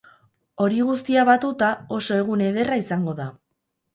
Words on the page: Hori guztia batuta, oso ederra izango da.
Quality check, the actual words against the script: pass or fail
fail